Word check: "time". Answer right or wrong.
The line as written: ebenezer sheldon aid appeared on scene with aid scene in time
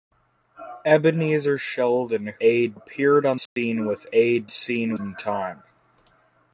right